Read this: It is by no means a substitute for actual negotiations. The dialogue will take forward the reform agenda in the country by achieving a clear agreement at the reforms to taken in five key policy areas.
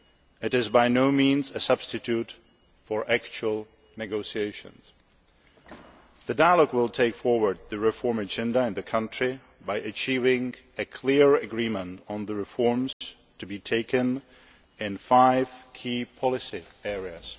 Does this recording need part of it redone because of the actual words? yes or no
yes